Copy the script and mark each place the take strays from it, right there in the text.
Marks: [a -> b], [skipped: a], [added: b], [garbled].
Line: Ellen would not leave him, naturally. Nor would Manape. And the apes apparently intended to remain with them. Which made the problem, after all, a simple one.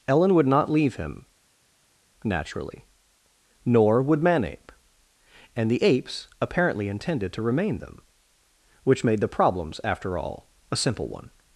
Ellen would not leave him, naturally. Nor would Manape. And the apes apparently intended to remain [skipped: with] them. Which made the [problem, -> problems] after all, a simple one.